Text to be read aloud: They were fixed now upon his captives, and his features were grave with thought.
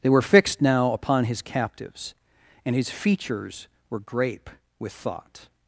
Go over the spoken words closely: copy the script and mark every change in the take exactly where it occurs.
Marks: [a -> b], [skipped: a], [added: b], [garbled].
They were fixed now upon his captives, and his features were [grave -> grape] with thought.